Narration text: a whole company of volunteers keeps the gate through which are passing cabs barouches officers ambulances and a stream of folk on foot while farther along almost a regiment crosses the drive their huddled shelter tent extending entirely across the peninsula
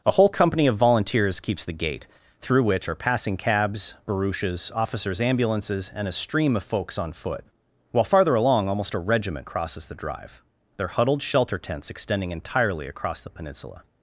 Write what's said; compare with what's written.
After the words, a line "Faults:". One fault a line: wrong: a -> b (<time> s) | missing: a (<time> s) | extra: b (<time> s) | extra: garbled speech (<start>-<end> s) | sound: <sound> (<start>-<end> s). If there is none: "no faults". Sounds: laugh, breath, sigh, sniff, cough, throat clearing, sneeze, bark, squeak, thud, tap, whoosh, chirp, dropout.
a whole company of volunteers keeps the gate through which are passing cabs barouches officers ambulances and a stream of folks on foot while farther along almost a regiment crosses the drive their huddled shelter tents extending entirely across the peninsula
Faults:
wrong: folk -> folks (6.6 s)
wrong: tent -> tents (11.6 s)